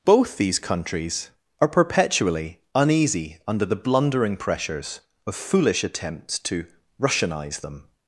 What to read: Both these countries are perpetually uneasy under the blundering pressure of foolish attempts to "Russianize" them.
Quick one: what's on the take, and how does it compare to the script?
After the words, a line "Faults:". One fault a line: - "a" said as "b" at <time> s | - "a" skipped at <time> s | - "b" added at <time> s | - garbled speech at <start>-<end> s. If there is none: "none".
Both these countries are perpetually uneasy under the blundering pressures of foolish attempts to "Russianize" them.
Faults:
- "pressure" said as "pressures" at 4.3 s